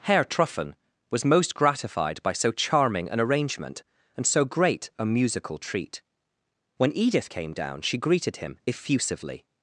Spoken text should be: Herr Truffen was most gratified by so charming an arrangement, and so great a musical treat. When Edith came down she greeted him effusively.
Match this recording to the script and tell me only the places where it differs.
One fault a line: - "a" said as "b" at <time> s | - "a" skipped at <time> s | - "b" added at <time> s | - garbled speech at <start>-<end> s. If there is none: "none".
none